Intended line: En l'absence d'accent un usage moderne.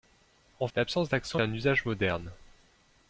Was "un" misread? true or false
false